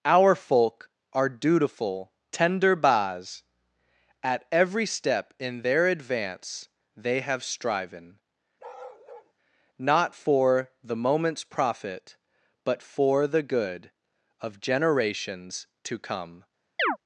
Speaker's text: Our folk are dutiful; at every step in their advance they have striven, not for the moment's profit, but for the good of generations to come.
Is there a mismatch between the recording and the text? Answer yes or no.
yes